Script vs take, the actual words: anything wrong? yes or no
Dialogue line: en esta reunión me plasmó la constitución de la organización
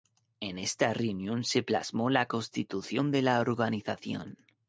yes